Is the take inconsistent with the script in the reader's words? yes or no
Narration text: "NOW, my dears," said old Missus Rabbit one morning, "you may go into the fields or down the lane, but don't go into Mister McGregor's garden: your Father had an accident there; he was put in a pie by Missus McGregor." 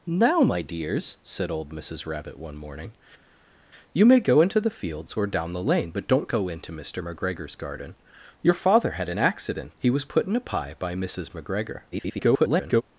yes